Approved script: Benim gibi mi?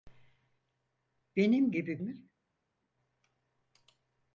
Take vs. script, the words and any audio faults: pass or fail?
pass